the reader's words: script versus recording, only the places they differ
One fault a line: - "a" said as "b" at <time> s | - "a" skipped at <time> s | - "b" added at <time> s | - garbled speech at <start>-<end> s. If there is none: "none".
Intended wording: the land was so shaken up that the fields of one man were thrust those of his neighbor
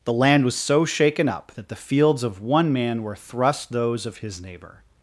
none